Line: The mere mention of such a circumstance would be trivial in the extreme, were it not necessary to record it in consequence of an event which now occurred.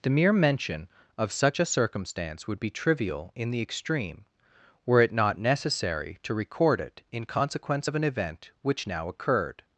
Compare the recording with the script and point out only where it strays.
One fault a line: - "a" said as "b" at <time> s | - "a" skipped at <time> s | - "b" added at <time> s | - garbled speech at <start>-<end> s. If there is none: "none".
none